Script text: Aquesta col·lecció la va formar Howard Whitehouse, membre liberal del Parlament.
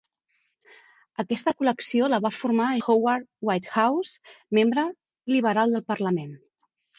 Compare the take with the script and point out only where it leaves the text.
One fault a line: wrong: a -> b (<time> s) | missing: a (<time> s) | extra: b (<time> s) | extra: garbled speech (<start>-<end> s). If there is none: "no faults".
no faults